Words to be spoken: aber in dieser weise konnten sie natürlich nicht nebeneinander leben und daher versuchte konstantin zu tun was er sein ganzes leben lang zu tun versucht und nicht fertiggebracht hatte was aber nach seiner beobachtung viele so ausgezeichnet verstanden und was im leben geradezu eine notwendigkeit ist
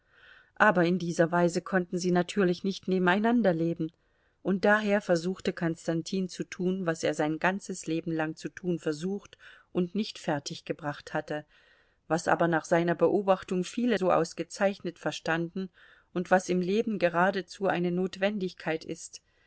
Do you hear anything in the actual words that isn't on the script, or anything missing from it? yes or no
no